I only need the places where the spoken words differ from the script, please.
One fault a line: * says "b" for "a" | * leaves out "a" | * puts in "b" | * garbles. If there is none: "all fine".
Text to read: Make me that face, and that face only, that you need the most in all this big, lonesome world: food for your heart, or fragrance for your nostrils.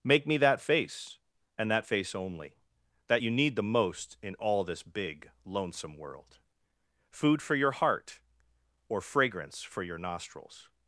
all fine